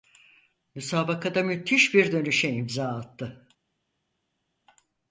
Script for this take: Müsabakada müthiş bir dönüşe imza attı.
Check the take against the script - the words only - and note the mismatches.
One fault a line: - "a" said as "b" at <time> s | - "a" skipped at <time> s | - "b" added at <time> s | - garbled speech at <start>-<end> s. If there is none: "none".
none